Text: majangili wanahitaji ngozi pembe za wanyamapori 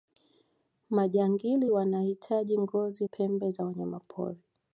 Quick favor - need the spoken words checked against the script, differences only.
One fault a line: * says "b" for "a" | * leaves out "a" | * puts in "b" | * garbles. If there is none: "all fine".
all fine